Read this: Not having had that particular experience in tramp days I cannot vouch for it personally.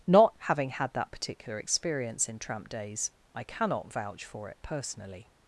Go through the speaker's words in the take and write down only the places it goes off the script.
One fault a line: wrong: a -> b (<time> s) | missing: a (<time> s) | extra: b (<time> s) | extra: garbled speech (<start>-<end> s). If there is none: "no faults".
no faults